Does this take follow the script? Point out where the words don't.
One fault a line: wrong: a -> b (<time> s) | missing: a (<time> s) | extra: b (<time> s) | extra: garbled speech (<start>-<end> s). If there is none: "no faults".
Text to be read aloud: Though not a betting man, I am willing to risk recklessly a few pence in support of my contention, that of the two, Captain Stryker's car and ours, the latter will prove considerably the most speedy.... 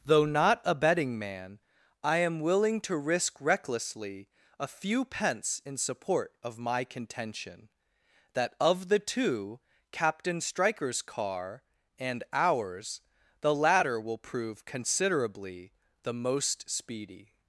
no faults